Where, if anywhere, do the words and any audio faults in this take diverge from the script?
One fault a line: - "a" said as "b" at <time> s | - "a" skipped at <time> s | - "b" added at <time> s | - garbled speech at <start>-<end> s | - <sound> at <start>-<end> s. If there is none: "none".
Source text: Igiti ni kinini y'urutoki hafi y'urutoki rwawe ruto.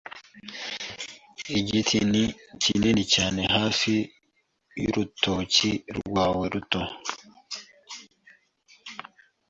- "y'urutoki" said as "cyane" at 3.1 s